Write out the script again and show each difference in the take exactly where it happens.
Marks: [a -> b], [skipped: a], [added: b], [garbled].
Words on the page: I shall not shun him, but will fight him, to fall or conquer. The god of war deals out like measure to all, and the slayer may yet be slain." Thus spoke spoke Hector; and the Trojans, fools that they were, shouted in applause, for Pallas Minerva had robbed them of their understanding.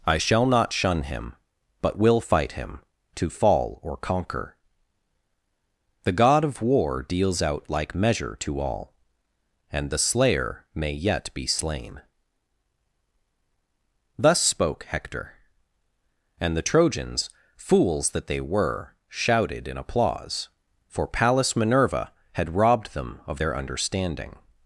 I shall not shun him, but will fight him, to fall or conquer. The god of war deals out like measure to all, and the slayer may yet be slain." Thus spoke [skipped: spoke] Hector; and the Trojans, fools that they were, shouted in applause, for Pallas Minerva had robbed them of their understanding.